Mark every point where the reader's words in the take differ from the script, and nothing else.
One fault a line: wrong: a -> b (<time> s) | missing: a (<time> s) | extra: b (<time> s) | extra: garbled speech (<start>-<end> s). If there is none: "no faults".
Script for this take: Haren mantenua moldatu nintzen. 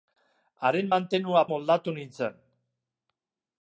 no faults